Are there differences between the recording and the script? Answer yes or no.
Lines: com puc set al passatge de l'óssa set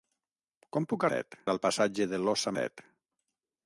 no